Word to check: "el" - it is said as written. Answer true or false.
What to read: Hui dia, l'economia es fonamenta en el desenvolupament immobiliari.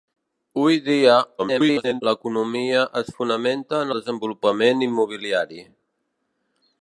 false